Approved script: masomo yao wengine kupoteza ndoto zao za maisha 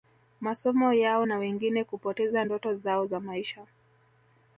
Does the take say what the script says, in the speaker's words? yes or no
no